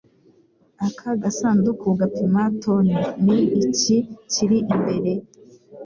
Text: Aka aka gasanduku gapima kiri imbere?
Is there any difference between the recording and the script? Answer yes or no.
yes